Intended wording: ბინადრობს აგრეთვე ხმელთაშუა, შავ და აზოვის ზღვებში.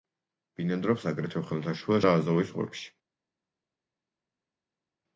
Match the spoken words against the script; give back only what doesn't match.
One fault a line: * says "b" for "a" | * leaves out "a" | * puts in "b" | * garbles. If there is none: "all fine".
* leaves out "შავ"